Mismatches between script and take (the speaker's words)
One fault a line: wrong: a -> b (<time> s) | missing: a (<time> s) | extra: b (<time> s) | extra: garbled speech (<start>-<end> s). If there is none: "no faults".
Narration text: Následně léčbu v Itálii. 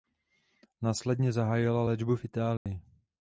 extra: zahájila (1.3 s)